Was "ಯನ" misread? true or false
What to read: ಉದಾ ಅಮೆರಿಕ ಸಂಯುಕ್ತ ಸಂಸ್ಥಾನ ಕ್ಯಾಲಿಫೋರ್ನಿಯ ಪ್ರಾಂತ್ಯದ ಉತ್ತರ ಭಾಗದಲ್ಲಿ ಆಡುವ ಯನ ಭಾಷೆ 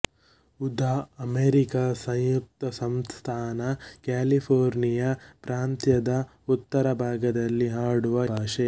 true